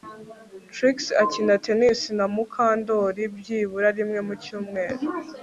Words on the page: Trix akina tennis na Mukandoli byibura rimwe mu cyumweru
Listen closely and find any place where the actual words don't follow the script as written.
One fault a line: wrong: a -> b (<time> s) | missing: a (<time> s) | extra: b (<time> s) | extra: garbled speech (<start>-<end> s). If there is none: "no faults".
no faults